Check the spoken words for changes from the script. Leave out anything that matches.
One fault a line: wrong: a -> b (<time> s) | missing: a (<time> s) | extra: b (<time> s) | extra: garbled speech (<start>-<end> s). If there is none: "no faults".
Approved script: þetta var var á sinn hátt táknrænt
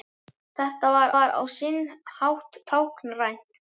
no faults